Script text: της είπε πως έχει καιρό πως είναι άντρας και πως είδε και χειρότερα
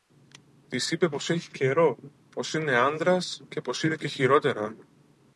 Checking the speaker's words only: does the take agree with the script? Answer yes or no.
yes